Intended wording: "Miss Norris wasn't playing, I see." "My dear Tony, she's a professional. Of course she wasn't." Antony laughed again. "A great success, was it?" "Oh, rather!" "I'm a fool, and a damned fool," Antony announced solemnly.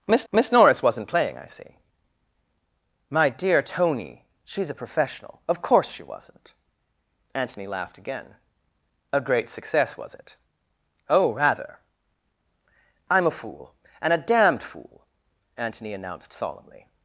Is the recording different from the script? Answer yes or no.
yes